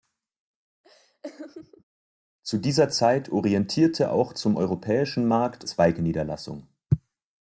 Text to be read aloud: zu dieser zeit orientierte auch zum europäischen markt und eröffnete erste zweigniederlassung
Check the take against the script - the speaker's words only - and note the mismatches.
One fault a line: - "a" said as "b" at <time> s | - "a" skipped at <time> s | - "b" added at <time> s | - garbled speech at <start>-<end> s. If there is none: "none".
- "und eröffnete erste" skipped at 5.6 s